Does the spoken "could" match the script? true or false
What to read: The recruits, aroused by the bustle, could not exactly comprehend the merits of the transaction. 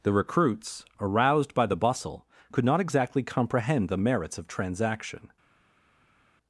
true